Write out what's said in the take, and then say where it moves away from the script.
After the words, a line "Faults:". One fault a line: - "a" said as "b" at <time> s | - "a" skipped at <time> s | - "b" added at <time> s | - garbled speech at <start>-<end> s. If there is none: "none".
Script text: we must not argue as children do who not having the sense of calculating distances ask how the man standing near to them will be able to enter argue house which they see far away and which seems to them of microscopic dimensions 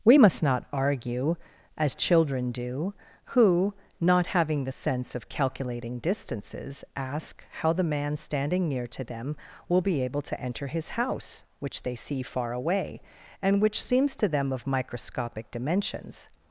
we must not argue as children do who not having the sense of calculating distances ask how the man standing near to them will be able to enter his house which they see far away and which seems to them of microscopic dimensions
Faults:
- "argue" said as "his" at 10.7 s